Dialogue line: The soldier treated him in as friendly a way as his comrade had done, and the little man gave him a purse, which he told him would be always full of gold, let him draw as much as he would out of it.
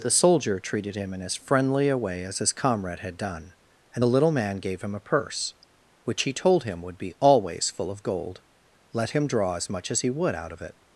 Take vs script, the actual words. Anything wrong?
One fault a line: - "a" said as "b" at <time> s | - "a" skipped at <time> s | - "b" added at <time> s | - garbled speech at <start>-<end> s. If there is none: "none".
none